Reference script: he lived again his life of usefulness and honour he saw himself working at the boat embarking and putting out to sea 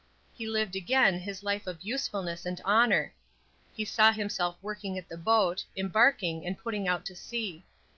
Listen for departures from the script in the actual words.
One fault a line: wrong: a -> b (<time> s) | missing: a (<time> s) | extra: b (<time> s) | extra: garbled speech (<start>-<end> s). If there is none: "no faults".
no faults